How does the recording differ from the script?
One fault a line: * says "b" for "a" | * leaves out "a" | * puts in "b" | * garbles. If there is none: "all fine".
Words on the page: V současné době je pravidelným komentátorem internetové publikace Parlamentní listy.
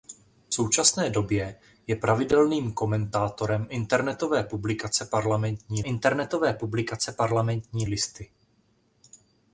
* puts in "internetové publikace Parlamentní"